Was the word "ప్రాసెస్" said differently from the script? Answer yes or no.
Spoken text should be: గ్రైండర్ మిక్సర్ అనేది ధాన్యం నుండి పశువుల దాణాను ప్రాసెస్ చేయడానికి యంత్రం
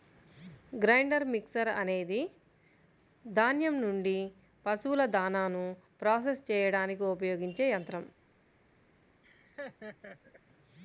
no